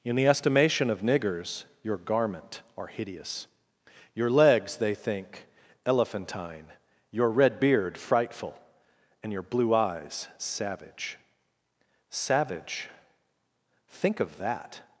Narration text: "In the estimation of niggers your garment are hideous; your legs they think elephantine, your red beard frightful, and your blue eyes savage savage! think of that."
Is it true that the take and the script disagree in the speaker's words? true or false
false